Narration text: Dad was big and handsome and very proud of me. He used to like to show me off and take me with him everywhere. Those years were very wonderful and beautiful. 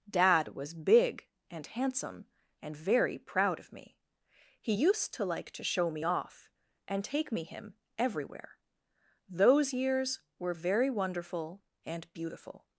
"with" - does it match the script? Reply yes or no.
no